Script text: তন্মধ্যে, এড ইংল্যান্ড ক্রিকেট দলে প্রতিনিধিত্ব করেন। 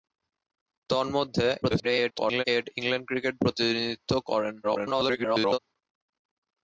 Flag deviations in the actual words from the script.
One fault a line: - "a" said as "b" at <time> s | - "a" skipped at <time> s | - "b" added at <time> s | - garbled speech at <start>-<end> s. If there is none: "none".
- garbled speech at 1.6-2.4 s
- "দলে" skipped at 3.3 s
- garbled speech at 4.6-5.6 s